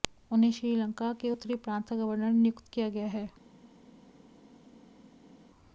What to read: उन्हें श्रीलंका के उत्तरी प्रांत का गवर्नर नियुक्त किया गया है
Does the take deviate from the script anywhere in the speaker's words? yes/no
no